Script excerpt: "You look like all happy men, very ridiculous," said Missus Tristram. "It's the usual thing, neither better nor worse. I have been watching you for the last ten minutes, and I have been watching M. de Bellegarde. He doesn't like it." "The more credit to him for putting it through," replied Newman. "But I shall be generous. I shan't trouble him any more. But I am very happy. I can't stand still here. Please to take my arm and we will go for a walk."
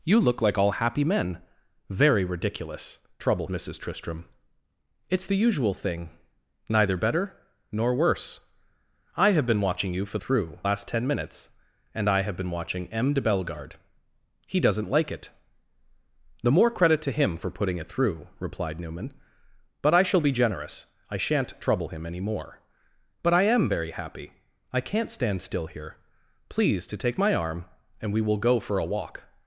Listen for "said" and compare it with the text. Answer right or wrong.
wrong